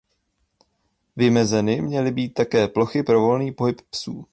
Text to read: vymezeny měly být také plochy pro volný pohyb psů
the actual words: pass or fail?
pass